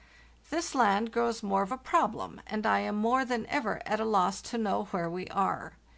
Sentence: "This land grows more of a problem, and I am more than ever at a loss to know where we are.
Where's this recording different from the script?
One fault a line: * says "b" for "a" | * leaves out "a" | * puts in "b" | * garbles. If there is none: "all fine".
all fine